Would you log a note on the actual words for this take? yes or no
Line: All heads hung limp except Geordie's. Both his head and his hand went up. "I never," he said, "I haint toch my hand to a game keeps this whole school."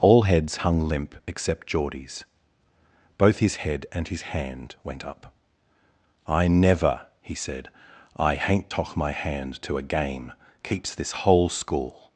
no